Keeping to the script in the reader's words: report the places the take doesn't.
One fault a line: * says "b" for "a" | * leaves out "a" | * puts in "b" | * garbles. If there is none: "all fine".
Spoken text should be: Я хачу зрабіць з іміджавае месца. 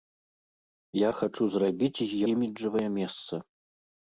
all fine